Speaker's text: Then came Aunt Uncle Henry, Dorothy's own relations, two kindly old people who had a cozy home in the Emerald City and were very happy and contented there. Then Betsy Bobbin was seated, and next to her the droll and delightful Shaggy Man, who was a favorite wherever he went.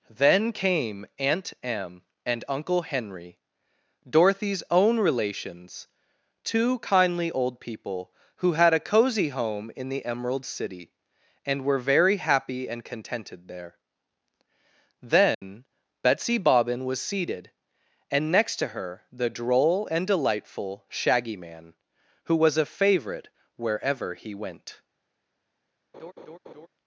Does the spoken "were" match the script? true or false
true